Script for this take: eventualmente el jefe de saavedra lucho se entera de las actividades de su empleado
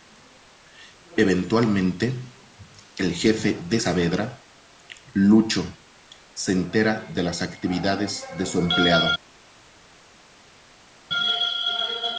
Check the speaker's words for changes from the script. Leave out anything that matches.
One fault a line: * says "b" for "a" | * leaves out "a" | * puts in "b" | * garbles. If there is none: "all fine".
all fine